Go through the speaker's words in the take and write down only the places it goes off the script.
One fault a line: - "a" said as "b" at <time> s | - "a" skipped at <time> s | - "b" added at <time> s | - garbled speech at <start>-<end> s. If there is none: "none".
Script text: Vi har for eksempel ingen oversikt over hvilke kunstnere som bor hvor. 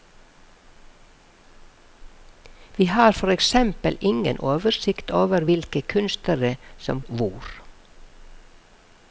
- "bor" skipped at 7.0 s